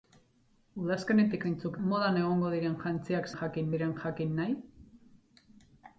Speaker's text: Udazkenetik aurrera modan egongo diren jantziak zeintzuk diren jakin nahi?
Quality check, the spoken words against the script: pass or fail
fail